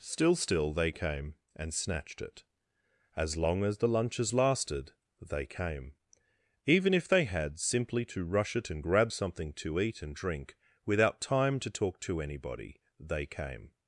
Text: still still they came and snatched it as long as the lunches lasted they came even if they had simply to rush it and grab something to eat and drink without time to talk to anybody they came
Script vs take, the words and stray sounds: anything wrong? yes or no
no